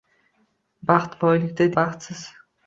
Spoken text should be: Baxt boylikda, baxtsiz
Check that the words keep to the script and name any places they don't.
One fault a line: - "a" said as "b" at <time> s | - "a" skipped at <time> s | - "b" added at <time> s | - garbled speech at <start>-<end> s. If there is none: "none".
none